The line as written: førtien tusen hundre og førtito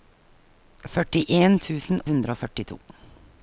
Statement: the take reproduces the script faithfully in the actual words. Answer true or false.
true